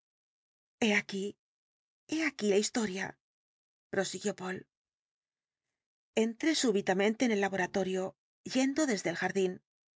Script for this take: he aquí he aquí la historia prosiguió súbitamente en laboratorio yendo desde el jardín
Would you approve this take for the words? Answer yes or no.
no